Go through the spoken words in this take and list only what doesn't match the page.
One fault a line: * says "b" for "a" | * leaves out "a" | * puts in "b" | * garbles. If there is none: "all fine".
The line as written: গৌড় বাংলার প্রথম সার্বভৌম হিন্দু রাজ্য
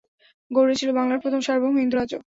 * puts in "ছিল"